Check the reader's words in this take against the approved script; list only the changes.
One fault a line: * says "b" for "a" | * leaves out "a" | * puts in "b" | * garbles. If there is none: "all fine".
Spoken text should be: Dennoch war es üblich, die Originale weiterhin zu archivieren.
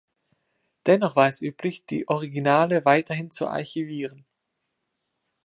all fine